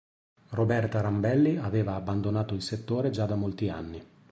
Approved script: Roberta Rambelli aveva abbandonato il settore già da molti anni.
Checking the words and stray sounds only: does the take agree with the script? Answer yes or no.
yes